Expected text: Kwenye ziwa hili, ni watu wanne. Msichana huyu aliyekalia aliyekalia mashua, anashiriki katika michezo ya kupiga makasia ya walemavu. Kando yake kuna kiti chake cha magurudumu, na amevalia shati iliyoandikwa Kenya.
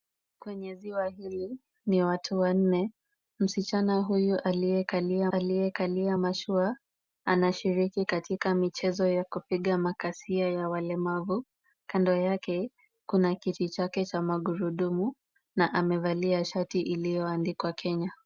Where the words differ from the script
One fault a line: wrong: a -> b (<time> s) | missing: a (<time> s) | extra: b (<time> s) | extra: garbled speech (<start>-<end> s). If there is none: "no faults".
no faults